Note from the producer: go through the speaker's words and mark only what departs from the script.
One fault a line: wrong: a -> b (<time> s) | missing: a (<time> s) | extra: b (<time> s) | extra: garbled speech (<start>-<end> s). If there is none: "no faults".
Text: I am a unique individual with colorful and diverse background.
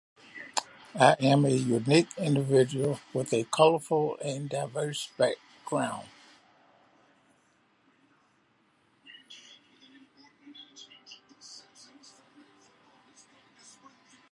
extra: a (3.3 s)